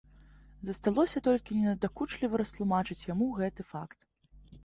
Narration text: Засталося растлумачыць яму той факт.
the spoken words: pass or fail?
fail